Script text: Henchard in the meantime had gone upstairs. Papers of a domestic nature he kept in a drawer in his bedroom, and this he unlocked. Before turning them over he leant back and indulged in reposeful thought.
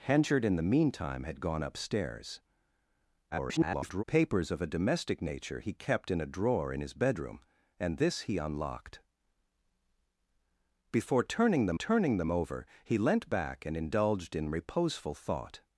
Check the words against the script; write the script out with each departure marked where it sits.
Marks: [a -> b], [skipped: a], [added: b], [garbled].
Henchard in the meantime had gone upstairs. [garbled] Papers of a domestic nature he kept in a drawer in his bedroom, and this he unlocked. Before turning them [added: turning them] over he leant back and indulged in reposeful thought.